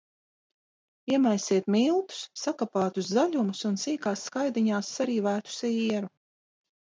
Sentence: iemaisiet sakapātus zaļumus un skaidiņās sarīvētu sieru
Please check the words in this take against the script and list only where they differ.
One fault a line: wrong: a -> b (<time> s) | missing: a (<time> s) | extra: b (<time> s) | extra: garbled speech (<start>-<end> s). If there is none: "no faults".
extra: miltus (1.8 s)
extra: sīkās (3.8 s)